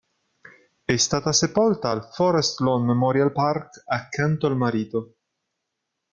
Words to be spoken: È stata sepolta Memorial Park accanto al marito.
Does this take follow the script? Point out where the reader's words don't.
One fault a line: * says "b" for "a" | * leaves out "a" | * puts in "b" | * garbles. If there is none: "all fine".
* puts in "al Forest Lawn"